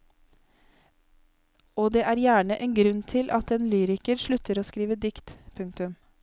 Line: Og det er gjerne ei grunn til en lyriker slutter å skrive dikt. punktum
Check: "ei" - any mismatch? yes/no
yes